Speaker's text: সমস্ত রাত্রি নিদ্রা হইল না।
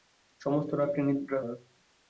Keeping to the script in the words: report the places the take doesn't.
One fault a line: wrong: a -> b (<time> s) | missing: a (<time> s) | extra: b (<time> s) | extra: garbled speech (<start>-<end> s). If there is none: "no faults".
missing: হইল (1.4 s)